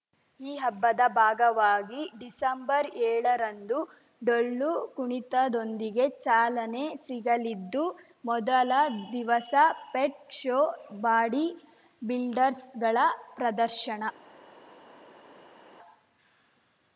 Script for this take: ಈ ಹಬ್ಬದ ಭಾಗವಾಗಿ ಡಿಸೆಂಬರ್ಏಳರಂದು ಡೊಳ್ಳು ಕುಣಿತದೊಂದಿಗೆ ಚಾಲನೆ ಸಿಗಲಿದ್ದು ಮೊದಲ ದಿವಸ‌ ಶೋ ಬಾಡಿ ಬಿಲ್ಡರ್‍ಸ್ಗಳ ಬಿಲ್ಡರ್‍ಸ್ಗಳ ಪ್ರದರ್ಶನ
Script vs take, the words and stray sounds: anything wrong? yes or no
yes